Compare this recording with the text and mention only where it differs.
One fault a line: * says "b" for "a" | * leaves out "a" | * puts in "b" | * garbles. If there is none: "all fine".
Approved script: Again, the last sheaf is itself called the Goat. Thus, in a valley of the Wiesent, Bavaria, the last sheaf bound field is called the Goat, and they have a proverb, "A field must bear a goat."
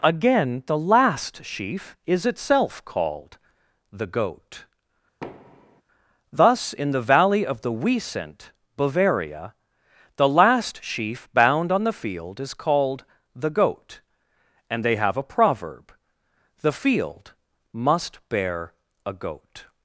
* says "the" for "a"
* puts in "on the"
* says "The" for "A"